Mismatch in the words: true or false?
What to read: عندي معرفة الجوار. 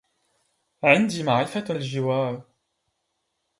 false